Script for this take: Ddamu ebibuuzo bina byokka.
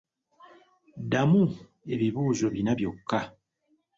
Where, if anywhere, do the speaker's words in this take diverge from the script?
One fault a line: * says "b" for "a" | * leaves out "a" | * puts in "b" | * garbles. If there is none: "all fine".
all fine